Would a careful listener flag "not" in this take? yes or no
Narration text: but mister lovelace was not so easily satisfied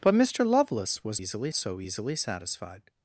yes